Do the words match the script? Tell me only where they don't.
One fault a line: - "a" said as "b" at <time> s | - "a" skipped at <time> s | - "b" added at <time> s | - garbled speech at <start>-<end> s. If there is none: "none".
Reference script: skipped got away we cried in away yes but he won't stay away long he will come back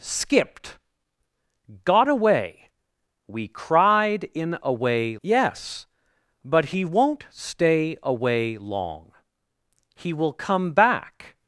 none